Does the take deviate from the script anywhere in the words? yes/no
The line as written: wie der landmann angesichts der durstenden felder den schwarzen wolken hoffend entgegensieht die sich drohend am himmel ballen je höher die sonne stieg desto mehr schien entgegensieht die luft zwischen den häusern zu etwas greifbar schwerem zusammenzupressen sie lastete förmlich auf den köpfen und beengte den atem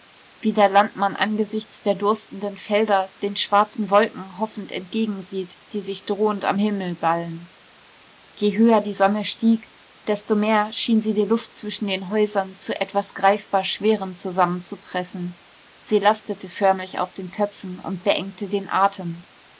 yes